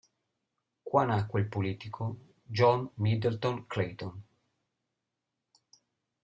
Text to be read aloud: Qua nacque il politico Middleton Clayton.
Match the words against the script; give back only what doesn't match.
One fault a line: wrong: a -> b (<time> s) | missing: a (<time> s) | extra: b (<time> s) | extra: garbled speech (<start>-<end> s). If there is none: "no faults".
extra: John (2.4 s)